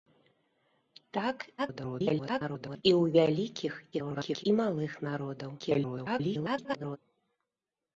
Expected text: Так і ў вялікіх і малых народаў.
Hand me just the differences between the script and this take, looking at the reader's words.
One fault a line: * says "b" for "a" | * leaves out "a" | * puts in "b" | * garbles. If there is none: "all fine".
* garbles
* garbles
* garbles